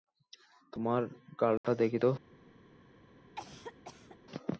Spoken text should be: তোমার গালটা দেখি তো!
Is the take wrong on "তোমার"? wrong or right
right